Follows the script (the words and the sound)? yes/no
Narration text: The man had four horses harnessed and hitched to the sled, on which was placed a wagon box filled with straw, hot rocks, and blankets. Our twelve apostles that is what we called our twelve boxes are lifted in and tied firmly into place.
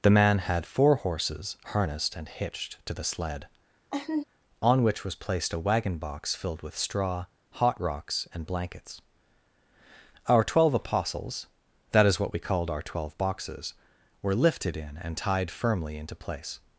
no